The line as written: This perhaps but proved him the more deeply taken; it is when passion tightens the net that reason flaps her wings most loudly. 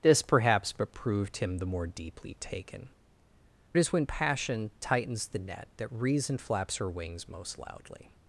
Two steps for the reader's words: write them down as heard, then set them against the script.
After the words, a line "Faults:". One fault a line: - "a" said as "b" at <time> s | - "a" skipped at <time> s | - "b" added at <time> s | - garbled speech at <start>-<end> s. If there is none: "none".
This perhaps but proved him the more deeply taken; it is when passion tightens the net that reason flaps her wings most loudly.
Faults:
none